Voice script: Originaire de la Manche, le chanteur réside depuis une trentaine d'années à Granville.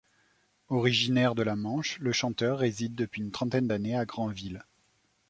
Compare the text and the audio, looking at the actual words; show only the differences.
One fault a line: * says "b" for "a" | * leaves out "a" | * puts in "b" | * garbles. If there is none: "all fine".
all fine